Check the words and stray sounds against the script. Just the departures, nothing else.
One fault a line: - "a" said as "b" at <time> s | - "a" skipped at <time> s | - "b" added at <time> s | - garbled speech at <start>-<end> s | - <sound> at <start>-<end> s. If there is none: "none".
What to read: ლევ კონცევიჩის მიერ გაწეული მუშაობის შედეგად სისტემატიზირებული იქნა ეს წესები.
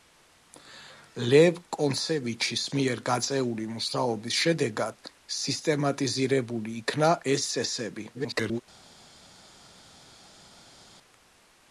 - garbled speech at 8.1-8.6 s